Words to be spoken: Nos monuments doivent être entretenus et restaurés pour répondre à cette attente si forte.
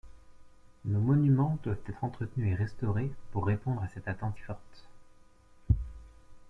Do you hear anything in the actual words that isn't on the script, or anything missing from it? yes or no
yes